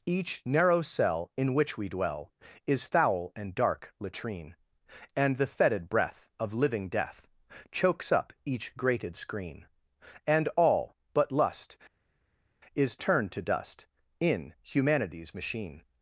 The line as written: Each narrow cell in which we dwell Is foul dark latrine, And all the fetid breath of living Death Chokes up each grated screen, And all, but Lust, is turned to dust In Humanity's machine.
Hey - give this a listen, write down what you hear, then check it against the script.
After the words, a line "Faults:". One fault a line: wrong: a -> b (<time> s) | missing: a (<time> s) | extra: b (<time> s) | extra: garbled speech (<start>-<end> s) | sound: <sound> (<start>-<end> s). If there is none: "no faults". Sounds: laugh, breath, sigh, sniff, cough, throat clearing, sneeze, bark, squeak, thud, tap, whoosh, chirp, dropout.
Each narrow cell in which we dwell Is foul and dark latrine, And the fetid breath of living Death Chokes up each grated screen, And all, but Lust, is turned to dust In Humanity's machine.
Faults:
extra: and (3.3 s)
missing: all (5.4 s)